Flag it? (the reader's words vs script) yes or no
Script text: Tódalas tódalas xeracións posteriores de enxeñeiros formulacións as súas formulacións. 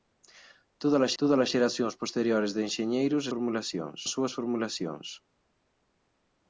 no